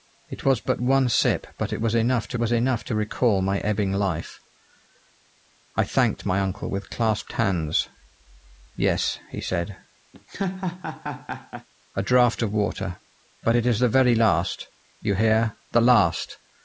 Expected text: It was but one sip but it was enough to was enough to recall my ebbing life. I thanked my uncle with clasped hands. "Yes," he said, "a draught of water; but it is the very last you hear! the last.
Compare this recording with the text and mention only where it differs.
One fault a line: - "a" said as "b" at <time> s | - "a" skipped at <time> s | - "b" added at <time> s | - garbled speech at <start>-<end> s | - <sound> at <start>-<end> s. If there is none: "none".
- laugh at 10.1-11.7 s